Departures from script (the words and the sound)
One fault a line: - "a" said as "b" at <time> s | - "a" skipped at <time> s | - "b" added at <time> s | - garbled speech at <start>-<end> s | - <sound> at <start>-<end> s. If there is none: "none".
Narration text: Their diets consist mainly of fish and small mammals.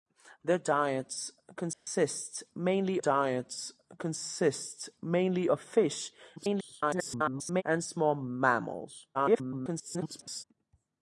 - dropout at 1.7-1.9 s
- "diets consist mainly" added at 2.9 s
- garbled speech at 6.4-7.6 s
- garbled speech at 9.1-10.4 s